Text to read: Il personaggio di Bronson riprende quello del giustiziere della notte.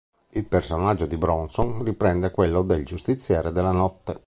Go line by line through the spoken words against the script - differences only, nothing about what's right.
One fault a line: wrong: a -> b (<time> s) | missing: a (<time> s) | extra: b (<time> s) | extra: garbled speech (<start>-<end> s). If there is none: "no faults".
no faults